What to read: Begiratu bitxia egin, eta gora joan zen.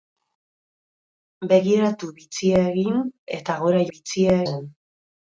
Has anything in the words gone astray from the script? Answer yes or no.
yes